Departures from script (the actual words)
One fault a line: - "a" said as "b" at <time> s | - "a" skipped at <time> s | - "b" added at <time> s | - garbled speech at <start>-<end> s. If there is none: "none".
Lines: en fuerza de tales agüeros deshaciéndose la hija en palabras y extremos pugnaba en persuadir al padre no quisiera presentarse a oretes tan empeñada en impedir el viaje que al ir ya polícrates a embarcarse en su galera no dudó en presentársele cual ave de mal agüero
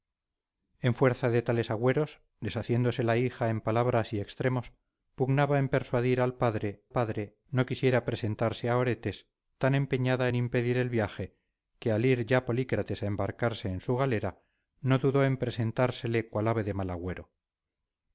- "padre" added at 6.9 s